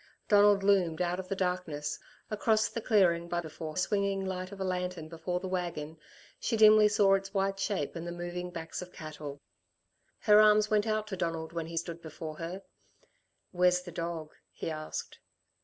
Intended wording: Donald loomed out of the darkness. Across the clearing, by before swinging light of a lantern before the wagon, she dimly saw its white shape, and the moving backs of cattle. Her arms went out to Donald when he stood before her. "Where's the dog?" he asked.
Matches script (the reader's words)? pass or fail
pass